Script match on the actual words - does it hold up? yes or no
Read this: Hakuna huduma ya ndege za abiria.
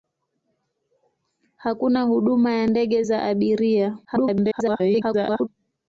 no